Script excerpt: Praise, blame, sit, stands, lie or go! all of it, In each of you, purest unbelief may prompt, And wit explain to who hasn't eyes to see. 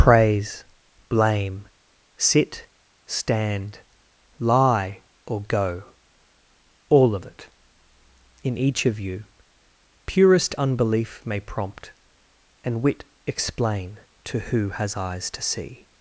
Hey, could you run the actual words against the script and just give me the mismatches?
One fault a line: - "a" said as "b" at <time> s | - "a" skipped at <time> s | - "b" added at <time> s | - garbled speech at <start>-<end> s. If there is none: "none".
- "stands" said as "stand" at 3.0 s
- "hasn't" said as "has" at 14.7 s